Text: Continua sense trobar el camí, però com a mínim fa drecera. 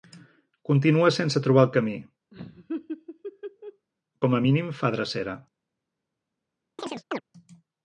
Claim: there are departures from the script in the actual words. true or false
true